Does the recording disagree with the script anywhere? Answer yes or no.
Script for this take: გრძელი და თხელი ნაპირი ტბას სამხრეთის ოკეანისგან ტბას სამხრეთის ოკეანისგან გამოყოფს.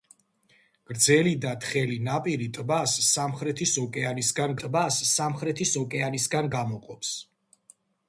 no